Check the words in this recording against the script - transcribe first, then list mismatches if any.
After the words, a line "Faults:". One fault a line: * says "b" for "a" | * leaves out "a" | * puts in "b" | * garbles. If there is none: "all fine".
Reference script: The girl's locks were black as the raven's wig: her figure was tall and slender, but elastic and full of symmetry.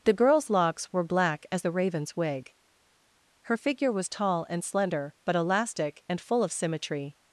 The girl's locks were black as the raven's wig: her figure was tall and slender, but elastic and full of symmetry.
Faults:
all fine